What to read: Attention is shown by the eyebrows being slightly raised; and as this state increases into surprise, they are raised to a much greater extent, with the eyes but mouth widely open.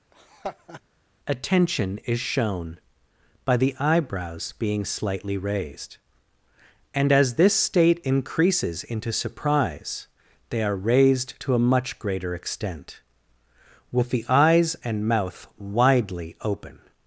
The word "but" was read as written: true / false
false